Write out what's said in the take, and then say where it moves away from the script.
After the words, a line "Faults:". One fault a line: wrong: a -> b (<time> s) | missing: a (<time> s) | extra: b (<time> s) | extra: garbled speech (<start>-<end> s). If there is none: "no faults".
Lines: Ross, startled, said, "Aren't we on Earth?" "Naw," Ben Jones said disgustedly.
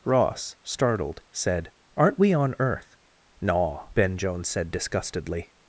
Ross, startled, said, "Aren't we on Earth?" "Naw," Ben Jones said disgustedly.
Faults:
no faults